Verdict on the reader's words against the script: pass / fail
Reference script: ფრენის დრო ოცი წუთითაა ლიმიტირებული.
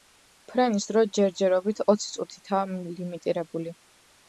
fail